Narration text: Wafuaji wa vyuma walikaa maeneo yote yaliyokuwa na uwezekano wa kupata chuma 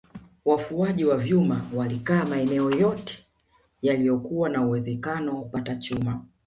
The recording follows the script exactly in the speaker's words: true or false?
false